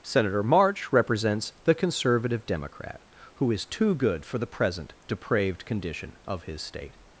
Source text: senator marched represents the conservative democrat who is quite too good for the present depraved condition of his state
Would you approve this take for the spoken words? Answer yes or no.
no